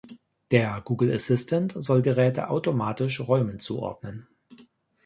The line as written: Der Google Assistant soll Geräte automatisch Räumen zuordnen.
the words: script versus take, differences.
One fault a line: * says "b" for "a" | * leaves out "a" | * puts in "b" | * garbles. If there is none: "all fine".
all fine